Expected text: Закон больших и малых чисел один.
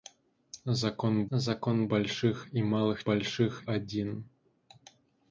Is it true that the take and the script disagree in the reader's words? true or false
true